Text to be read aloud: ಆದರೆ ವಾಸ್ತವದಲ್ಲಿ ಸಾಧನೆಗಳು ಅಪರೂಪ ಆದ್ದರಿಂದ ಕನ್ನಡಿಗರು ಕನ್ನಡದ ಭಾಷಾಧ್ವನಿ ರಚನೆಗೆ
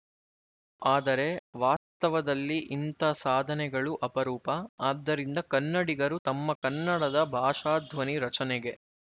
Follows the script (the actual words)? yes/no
no